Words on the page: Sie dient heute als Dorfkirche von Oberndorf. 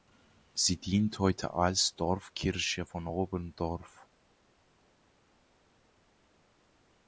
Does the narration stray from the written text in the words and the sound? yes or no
no